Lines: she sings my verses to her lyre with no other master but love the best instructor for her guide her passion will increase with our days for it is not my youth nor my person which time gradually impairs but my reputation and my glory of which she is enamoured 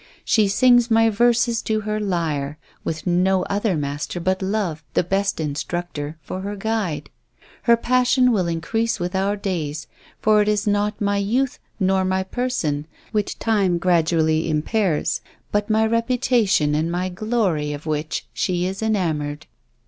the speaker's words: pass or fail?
pass